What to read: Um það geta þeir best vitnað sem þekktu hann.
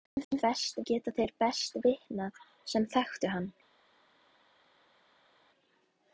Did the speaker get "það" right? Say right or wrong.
wrong